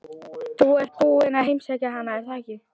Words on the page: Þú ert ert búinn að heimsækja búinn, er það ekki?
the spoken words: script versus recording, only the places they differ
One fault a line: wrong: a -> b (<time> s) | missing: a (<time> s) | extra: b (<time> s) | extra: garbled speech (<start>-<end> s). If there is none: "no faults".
missing: ert (0.9 s)
wrong: búinn -> hana (2.0 s)